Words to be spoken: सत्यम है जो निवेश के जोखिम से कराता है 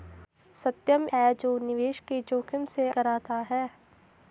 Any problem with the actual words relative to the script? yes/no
no